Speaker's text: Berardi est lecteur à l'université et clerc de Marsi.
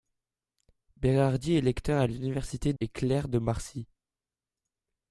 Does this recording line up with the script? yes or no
yes